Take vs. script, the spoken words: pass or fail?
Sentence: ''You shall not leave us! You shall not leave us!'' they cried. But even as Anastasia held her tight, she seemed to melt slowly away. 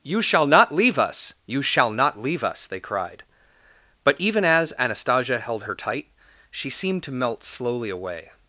pass